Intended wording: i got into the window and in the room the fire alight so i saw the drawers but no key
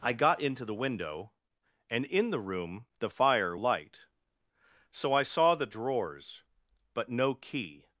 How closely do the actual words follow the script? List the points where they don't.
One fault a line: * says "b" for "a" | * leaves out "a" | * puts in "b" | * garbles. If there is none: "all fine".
all fine